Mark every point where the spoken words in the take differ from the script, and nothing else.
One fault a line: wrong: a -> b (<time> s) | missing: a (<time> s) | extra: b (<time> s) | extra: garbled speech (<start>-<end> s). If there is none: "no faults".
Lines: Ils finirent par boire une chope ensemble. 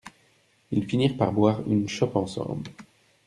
no faults